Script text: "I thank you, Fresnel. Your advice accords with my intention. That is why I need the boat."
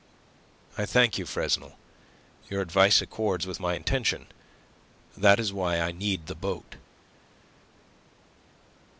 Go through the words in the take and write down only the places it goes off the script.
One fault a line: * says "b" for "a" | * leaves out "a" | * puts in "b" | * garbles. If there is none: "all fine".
all fine